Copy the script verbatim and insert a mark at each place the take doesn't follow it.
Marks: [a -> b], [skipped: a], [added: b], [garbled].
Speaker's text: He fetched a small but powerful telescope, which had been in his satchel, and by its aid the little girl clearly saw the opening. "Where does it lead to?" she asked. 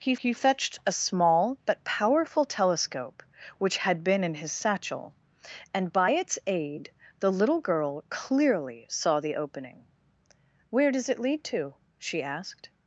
He [added: he] fetched a small but powerful telescope, which had been in his satchel, and by its aid the little girl clearly saw the opening. "Where does it lead to?" she asked.